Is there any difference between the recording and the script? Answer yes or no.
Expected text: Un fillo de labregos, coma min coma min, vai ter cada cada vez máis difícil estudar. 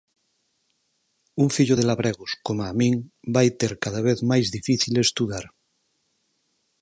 yes